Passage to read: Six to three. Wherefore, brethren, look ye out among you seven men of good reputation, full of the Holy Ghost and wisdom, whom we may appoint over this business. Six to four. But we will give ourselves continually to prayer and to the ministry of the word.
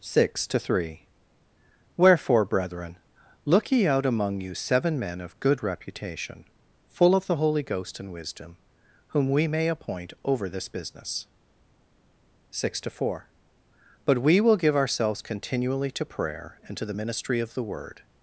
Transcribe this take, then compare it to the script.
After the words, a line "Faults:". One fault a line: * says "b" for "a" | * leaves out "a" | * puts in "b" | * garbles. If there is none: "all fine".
Six to three. Wherefore, brethren, look ye out among you seven men of good reputation, full of the Holy Ghost and wisdom, whom we may appoint over this business. Six to four. But we will give ourselves continually to prayer and to the ministry of the word.
Faults:
all fine